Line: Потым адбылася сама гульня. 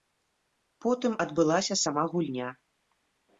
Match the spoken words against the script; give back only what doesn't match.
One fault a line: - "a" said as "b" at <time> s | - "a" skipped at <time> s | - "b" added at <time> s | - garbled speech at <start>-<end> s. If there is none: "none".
none